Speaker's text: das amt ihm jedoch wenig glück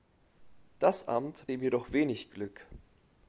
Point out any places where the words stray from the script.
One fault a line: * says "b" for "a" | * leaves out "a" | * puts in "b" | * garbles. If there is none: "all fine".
all fine